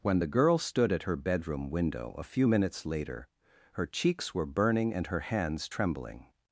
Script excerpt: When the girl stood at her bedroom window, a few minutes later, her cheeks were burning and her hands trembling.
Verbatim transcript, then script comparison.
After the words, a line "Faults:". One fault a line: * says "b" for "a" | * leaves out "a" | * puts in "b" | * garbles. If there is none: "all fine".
When the girl stood at her bedroom window, a few minutes later, her cheeks were burning and her hands trembling.
Faults:
all fine